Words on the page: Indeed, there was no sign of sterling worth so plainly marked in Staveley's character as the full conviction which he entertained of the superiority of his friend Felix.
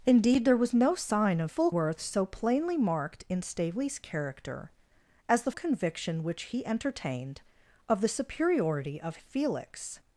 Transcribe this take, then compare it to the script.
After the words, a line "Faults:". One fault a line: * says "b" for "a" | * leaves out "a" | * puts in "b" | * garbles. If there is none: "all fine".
Indeed, there was no sign of full worth so plainly marked in Staveley's character as the conviction which he entertained of the superiority of Felix.
Faults:
* says "full" for "sterling"
* leaves out "full"
* leaves out "his friend"